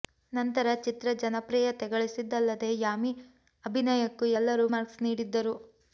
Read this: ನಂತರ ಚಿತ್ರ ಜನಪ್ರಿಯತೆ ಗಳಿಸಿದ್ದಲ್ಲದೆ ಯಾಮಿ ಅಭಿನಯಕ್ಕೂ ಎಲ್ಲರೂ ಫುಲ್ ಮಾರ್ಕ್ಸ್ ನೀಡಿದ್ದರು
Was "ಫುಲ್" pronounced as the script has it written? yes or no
no